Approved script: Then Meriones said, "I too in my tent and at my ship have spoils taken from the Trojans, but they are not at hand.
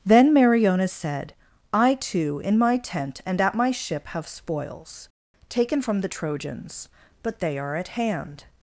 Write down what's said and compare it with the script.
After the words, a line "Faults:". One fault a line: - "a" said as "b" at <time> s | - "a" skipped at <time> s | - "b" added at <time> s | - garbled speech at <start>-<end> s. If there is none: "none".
Then Meriones said, "I too in my tent and at my ship have spoils taken from the Trojans, but they are at hand.
Faults:
- "not" skipped at 7.7 s